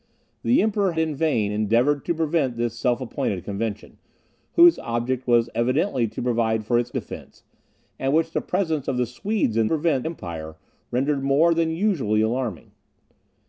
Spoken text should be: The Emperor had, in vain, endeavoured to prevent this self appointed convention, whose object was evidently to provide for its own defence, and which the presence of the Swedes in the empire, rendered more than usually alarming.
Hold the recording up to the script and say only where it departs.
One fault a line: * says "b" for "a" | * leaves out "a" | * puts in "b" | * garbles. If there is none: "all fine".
* leaves out "had"
* leaves out "own"
* says "prevent" for "the"